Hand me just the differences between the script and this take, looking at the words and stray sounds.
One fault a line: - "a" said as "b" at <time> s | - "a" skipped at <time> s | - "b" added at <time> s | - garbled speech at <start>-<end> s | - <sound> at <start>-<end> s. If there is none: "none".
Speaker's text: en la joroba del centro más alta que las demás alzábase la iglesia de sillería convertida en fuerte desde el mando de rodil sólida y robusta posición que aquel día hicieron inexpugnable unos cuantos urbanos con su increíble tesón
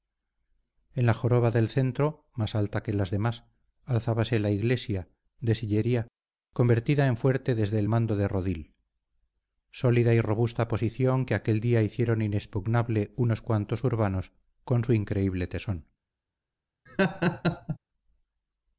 - laugh at 16.9-17.8 s